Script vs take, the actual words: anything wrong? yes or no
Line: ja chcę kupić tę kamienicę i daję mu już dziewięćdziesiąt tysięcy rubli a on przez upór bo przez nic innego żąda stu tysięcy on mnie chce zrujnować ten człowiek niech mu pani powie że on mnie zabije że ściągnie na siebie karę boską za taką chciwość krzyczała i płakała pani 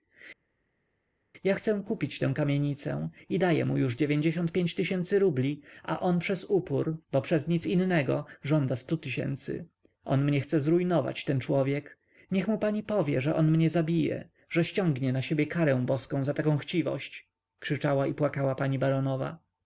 yes